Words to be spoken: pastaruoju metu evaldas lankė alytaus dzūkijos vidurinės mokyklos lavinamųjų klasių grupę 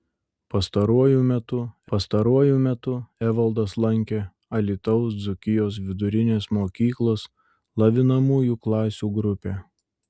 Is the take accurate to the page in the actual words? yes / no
no